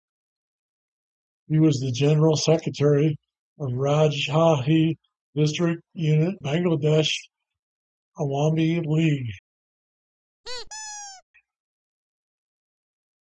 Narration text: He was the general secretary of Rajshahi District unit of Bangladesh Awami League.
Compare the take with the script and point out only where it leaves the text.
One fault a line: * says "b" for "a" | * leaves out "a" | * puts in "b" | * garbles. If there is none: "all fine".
* leaves out "of"